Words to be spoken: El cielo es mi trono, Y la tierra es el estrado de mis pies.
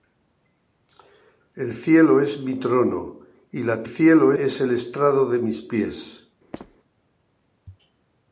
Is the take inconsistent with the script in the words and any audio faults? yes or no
yes